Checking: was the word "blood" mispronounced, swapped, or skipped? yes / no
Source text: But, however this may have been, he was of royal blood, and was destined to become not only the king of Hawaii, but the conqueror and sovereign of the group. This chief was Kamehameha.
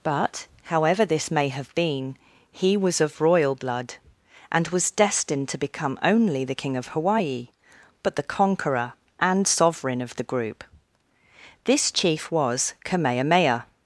no